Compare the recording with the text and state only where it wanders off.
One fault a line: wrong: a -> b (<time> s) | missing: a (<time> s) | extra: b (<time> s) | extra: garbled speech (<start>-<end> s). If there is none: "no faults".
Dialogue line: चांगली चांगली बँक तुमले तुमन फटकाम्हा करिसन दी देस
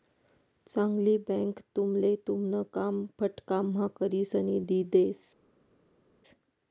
missing: चांगली (1.2 s)
extra: काम (2.7 s)